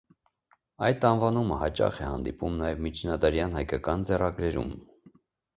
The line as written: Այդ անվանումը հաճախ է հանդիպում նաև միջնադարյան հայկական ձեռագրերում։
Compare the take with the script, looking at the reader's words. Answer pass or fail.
pass